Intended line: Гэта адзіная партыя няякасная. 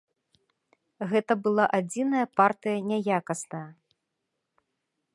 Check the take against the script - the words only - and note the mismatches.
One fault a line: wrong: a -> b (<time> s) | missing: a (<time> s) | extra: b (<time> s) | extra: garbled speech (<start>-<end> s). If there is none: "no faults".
extra: была (1.5 s)